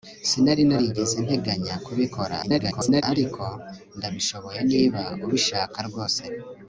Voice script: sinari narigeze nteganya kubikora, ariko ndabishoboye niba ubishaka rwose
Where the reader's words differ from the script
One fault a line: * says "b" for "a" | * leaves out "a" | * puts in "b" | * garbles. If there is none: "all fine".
* garbles